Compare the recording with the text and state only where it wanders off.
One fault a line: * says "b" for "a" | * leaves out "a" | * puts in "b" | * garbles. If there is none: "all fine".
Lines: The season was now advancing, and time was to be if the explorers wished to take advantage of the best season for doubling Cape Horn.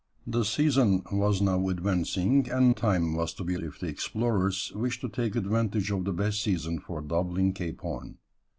all fine